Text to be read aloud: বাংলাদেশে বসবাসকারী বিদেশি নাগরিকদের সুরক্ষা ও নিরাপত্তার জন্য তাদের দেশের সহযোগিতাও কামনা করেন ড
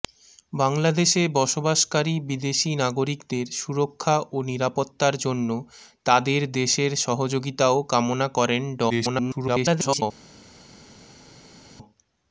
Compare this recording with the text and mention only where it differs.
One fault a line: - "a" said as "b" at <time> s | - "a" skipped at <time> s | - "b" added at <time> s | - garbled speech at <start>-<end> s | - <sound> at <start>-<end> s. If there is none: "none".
- garbled speech at 8.9-10.0 s